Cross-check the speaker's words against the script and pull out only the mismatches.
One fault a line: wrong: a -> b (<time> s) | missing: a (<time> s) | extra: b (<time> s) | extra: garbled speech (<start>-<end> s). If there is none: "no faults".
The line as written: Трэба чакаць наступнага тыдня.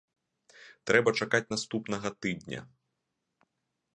no faults